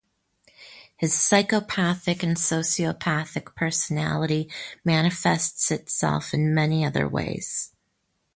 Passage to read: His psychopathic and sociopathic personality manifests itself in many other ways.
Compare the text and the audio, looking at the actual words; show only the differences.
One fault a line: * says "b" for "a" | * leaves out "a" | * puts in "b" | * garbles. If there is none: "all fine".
all fine